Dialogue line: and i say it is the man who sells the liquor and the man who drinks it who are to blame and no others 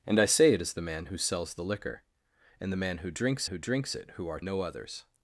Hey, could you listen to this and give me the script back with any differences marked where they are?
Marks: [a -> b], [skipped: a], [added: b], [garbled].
and i say it is the man who sells the liquor and the man who drinks [added: who drinks] it who are [skipped: to blame and] no others